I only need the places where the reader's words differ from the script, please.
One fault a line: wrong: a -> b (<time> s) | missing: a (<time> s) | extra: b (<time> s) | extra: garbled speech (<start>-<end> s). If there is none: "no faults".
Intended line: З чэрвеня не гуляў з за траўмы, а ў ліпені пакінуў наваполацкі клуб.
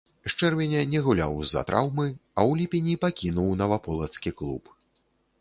no faults